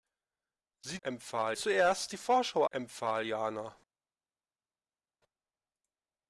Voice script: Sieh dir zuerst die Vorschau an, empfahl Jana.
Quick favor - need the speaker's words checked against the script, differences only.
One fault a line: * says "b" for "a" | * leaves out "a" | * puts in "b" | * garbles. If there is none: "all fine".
* says "empfahl" for "dir"
* leaves out "an"